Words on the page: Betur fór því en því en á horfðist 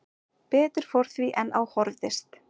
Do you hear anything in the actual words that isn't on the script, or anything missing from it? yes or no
yes